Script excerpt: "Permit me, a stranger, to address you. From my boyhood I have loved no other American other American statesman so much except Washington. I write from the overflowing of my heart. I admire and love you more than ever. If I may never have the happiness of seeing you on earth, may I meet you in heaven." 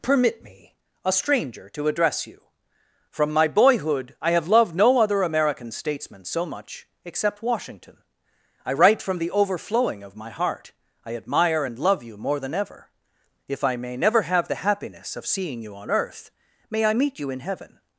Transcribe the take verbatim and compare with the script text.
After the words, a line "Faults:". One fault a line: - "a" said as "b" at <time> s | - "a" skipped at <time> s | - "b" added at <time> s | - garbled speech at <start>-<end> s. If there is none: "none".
"Permit me, a stranger, to address you. From my boyhood I have loved no other American statesman so much except Washington. I write from the overflowing of my heart. I admire and love you more than ever. If I may never have the happiness of seeing you on earth, may I meet you in heaven."
Faults:
- "other American" skipped at 5.7 s